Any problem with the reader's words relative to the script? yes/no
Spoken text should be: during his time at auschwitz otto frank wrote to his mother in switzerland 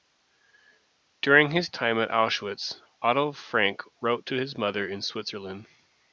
no